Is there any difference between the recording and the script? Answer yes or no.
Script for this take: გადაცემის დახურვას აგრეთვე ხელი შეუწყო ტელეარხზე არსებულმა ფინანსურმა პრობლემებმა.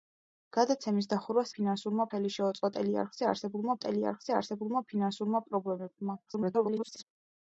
yes